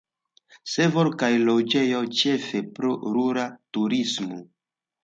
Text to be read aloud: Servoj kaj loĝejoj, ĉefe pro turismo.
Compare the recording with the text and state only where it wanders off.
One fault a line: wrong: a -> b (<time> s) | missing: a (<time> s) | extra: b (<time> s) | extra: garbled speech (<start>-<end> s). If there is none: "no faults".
extra: rura (3.2 s)